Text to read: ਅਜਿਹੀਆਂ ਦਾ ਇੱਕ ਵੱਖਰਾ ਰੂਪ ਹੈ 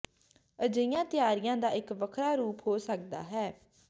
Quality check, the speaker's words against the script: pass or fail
fail